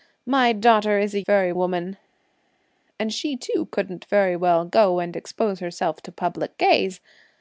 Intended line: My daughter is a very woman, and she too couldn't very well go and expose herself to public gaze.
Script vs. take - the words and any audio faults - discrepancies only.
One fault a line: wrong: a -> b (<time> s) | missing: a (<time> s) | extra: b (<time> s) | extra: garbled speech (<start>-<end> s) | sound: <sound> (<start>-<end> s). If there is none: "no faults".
no faults